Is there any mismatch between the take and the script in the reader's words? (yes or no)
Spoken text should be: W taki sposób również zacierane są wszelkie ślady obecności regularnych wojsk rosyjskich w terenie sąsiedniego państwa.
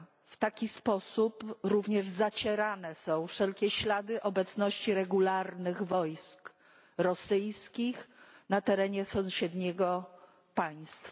yes